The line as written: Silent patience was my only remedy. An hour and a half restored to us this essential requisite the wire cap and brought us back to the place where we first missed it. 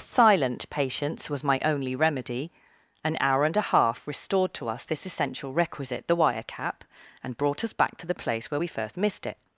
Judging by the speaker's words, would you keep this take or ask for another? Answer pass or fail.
pass